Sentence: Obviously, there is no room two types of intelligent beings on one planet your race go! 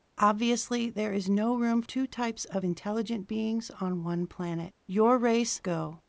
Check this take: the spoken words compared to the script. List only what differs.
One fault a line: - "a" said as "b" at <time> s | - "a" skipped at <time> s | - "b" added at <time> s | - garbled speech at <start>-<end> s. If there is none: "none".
none